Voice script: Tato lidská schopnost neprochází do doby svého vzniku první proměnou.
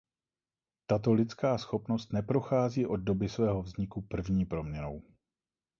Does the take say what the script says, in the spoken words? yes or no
no